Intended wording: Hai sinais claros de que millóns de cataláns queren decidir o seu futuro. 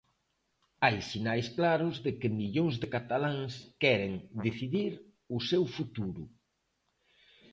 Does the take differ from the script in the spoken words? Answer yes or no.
no